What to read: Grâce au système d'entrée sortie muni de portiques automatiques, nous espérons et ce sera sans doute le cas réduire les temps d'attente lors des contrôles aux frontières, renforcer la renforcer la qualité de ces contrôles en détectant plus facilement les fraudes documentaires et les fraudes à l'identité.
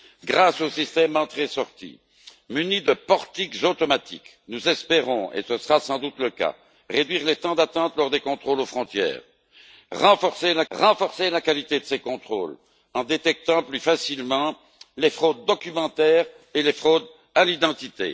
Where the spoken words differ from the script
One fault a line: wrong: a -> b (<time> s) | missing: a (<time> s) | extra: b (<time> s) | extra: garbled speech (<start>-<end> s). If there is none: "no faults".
no faults